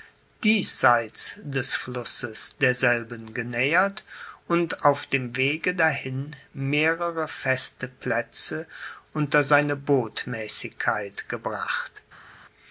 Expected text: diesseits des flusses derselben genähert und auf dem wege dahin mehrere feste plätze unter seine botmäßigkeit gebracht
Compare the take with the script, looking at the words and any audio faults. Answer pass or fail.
pass